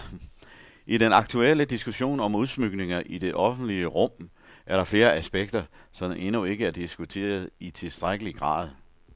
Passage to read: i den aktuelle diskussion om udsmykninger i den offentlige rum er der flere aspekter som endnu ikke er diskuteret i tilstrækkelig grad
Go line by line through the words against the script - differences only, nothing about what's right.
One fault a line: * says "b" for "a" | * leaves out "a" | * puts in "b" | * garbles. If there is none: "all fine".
* says "det" for "den"